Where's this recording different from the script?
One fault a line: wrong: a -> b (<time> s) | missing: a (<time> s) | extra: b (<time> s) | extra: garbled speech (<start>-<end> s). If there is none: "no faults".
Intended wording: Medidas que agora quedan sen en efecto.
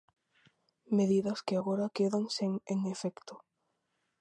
no faults